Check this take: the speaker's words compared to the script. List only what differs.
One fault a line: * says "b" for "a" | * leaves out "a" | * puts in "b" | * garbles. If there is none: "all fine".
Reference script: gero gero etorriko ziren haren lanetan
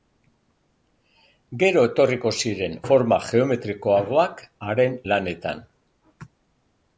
* leaves out "gero"
* puts in "forma geometrikoagoak"